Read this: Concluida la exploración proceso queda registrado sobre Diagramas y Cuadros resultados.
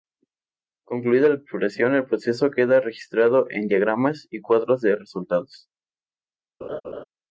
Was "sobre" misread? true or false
true